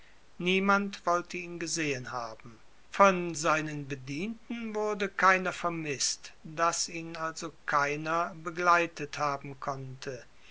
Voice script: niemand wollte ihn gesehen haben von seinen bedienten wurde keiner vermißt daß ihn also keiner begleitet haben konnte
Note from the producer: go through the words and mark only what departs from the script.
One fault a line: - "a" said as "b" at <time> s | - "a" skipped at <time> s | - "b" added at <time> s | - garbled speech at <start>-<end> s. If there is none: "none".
none